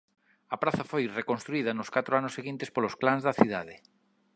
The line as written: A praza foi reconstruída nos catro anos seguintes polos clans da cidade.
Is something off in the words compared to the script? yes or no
no